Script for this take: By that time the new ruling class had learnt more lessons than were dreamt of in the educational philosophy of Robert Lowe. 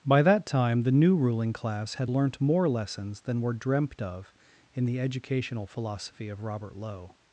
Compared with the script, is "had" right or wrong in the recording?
right